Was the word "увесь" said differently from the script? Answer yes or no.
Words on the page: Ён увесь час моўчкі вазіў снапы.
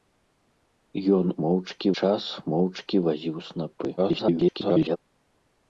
yes